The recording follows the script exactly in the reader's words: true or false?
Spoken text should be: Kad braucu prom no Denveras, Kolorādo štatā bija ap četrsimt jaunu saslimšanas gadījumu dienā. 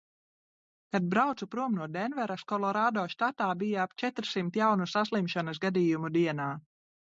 true